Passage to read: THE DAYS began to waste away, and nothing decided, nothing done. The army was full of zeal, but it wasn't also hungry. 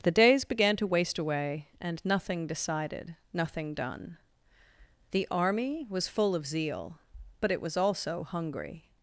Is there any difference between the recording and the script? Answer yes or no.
yes